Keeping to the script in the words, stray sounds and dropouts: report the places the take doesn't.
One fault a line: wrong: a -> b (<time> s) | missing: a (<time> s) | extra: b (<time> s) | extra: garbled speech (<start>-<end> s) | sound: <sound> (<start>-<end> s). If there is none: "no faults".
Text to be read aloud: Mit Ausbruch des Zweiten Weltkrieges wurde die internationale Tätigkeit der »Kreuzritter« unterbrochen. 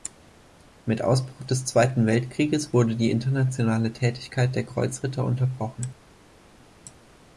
no faults